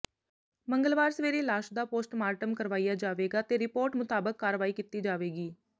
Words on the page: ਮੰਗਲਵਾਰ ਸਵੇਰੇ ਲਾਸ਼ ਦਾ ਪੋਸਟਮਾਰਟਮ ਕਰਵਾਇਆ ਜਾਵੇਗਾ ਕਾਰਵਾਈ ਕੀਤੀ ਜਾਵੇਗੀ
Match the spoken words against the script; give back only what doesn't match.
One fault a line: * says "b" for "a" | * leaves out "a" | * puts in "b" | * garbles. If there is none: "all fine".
* puts in "ਤੇ ਰਿਪੋਰਟ ਮੁਤਾਬਕ"